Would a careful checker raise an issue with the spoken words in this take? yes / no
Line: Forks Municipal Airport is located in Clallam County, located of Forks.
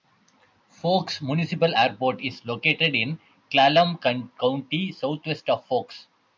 yes